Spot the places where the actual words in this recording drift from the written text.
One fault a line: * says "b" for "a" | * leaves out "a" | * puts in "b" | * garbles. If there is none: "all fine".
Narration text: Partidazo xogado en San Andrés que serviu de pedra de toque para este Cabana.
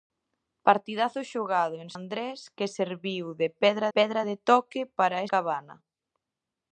* leaves out "San"
* puts in "pedra"
* leaves out "este"